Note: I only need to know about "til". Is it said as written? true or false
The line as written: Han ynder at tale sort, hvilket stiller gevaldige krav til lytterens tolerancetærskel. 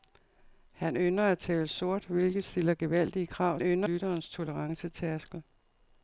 false